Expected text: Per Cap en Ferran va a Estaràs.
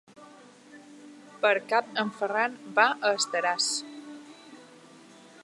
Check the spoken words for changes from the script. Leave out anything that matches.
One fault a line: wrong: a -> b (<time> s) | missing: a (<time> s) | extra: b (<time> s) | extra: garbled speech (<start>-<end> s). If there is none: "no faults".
no faults